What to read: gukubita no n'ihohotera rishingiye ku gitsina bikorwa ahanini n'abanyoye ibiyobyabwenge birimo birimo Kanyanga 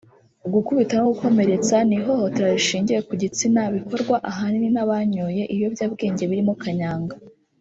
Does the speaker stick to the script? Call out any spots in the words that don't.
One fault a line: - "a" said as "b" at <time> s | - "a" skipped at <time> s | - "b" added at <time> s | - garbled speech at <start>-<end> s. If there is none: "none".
- "gukomeretsa" added at 1.1 s
- "birimo" skipped at 6.5 s